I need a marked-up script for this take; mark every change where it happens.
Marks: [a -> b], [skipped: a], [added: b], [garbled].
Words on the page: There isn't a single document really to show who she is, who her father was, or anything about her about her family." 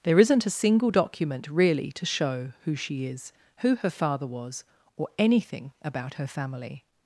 There isn't a single document really to show who she is, who her father was, or anything about her [skipped: about her] family."